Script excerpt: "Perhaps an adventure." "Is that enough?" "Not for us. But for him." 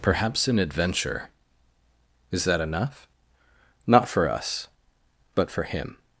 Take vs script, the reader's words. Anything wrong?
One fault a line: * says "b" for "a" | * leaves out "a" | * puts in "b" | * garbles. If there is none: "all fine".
all fine